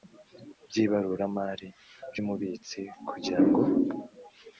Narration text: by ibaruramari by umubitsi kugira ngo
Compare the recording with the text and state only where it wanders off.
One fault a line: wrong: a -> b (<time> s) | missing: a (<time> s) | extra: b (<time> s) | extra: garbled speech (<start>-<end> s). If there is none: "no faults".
no faults